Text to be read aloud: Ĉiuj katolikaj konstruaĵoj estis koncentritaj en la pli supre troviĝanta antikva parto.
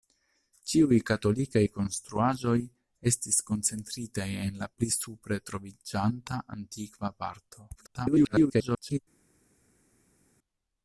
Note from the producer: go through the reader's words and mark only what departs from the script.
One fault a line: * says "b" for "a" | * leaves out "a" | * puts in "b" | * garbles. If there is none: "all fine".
* garbles